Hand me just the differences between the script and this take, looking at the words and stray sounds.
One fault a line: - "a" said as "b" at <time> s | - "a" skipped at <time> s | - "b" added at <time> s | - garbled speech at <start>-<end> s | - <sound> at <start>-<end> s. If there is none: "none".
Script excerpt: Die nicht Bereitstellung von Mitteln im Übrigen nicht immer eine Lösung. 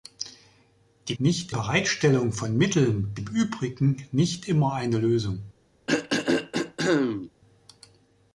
- throat clearing at 5.9-7.3 s